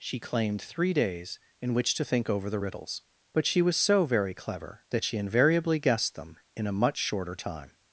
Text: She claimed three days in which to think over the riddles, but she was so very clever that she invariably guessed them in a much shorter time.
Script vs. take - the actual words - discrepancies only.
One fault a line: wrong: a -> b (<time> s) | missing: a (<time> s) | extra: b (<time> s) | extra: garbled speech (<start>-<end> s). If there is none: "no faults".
no faults